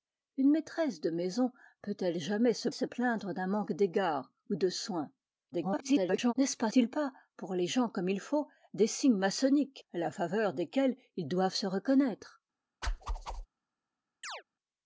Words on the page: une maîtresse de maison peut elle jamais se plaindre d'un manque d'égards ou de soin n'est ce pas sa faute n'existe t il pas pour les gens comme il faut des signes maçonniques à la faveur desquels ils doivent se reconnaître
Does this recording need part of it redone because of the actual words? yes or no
yes